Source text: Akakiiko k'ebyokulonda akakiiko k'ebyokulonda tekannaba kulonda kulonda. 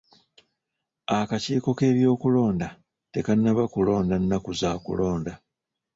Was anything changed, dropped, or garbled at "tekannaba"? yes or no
yes